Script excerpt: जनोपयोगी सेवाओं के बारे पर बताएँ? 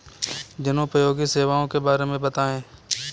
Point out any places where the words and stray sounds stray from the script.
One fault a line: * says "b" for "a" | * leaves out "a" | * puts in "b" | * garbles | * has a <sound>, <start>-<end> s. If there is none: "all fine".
* says "में" for "पर"